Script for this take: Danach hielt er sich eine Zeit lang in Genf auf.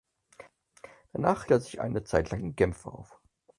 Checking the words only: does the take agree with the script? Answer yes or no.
no